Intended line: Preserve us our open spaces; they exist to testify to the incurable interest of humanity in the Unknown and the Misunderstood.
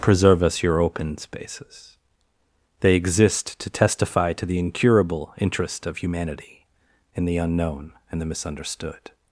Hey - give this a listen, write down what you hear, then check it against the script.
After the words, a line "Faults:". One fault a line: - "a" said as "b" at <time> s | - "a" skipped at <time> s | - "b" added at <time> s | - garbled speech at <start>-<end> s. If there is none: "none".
Preserve us your open spaces; they exist to testify to the incurable interest of humanity in the Unknown and the Misunderstood.
Faults:
- "our" said as "your" at 0.6 s